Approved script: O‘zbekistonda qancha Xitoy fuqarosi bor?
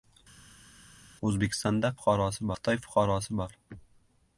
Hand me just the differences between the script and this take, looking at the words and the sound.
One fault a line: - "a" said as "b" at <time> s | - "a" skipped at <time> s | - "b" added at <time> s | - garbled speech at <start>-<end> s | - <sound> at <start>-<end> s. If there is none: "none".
- "qancha" said as "fuqarosi" at 2.0 s